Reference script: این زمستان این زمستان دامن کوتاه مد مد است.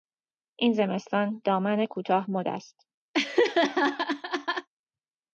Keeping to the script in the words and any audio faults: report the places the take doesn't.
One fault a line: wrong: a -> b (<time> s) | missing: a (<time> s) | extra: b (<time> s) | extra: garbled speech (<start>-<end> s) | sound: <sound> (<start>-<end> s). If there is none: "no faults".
missing: این زمستان (1.4 s)
missing: مد (2.5 s)
sound: laugh (3.1-4.7 s)